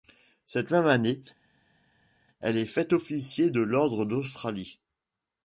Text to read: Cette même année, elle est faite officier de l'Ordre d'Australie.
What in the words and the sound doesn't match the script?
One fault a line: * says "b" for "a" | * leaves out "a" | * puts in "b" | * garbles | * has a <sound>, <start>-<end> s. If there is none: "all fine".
all fine